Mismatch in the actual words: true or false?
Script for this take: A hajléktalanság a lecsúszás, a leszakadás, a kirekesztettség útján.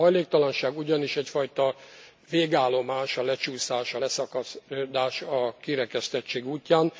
true